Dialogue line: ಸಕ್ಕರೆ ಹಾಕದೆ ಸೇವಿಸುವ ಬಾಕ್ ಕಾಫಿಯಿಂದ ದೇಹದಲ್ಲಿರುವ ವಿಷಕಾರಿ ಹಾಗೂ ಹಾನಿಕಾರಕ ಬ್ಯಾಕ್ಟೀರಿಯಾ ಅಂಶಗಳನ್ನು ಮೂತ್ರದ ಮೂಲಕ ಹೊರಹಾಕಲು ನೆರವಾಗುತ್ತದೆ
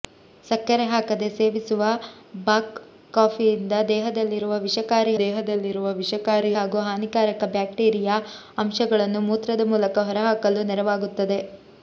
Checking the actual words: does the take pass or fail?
fail